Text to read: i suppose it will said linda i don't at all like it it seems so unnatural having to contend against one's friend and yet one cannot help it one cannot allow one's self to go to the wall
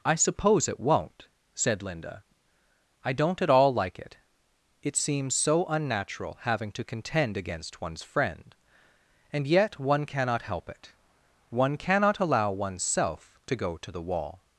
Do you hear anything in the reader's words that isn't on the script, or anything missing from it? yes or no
yes